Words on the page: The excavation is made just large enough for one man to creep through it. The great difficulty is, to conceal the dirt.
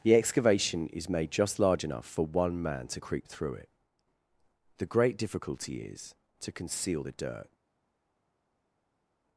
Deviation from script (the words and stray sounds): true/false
false